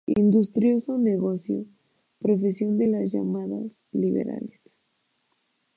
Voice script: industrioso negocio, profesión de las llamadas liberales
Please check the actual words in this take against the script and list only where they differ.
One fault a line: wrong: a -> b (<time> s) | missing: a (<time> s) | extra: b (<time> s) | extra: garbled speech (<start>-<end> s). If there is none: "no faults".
no faults